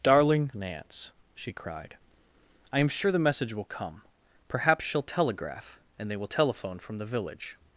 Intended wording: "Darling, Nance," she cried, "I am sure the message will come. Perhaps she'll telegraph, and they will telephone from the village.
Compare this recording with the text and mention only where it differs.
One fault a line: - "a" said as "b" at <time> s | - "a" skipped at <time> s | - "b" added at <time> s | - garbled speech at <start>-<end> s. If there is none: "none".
none